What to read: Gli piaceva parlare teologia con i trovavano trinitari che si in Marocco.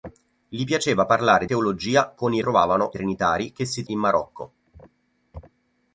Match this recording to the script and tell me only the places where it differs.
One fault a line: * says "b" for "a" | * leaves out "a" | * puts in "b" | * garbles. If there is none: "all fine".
all fine